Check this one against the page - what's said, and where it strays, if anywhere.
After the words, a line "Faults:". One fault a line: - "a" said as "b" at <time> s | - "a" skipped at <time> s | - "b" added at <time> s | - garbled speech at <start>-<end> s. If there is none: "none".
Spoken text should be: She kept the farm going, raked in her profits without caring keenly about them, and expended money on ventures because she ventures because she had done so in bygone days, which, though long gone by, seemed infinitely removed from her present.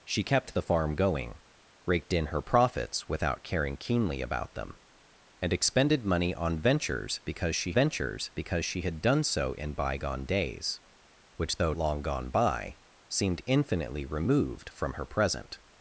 She kept the farm going, raked in her profits without caring keenly about them, and expended money on ventures because she ventures because she had done so in bygone days, which, though long gone by, seemed infinitely removed from her present.
Faults:
none